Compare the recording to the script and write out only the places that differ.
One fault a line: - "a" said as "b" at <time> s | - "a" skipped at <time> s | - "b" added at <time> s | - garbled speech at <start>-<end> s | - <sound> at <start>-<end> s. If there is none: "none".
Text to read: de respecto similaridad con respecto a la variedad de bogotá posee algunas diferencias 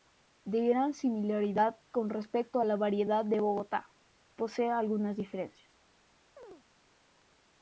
- "respecto" said as "gran" at 0.7 s
- chirp at 6.4-6.6 s